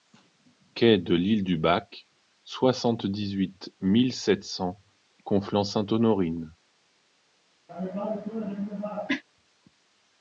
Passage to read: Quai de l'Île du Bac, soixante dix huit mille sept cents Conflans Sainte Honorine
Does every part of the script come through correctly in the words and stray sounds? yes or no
no